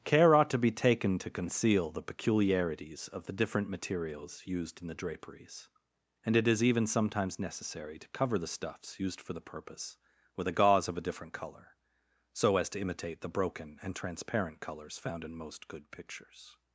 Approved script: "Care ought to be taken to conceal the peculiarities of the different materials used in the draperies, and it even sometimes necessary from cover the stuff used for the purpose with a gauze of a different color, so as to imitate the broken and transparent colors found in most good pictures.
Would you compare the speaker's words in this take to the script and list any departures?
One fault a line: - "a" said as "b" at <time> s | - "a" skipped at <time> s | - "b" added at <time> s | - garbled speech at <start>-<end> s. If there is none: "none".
- "is" added at 6.5 s
- "from" said as "to" at 8.0 s
- "stuff" said as "stuffs" at 8.5 s